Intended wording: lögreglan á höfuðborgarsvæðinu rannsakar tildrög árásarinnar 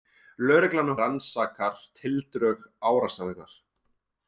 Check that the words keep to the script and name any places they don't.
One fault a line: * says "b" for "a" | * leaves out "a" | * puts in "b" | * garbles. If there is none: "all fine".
* leaves out "höfuðborgarsvæðinu"